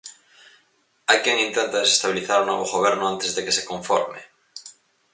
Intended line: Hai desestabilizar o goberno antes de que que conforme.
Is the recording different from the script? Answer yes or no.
yes